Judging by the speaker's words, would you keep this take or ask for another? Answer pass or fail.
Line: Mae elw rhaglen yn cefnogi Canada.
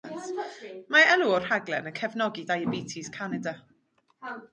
fail